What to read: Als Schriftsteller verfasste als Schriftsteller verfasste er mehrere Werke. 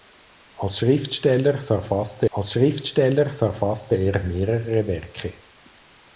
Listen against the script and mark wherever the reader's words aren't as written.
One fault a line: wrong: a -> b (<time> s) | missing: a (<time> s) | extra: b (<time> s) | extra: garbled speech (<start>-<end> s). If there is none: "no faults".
no faults